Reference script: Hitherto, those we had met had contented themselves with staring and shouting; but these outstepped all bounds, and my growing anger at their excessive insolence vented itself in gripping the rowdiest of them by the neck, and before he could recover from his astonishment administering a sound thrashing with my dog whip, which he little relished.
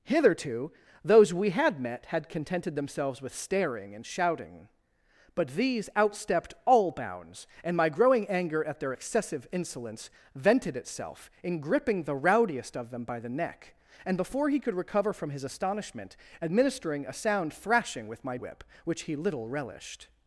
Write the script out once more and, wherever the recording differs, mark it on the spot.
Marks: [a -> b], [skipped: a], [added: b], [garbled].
Hitherto, those we had met had contented themselves with staring and shouting; but these outstepped all bounds, and my growing anger at their excessive insolence vented itself in gripping the rowdiest of them by the neck, and before he could recover from his astonishment administering a sound thrashing with my [skipped: dog] whip, which he little relished.